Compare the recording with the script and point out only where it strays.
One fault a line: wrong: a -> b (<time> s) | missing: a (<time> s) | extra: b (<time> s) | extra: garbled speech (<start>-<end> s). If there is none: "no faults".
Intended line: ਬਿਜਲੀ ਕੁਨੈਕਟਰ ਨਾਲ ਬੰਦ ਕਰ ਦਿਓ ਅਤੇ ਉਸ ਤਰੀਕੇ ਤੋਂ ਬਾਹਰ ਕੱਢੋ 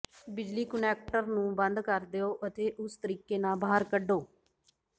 wrong: ਨਾਲ -> ਨੂੰ (1.2 s)
wrong: ਤੋਂ -> ਨਾਲ (3.4 s)